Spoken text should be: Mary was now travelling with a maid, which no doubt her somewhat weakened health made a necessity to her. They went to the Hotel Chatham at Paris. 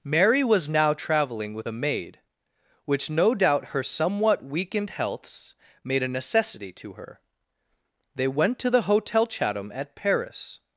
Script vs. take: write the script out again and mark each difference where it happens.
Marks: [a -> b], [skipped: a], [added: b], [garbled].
Mary was now travelling with a maid, which no doubt her somewhat weakened [health -> healths] made a necessity to her. They went to the Hotel Chatham at Paris.